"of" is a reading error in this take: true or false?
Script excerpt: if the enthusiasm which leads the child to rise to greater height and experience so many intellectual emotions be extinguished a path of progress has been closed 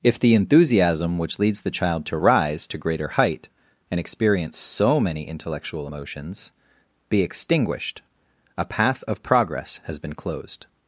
false